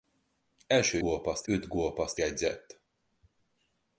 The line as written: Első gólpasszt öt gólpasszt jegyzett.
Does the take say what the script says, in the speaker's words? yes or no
yes